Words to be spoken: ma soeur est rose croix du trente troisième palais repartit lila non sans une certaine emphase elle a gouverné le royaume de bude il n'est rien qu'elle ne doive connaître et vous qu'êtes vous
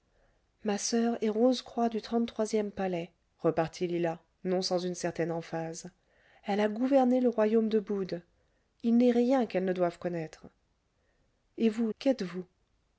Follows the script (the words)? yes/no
yes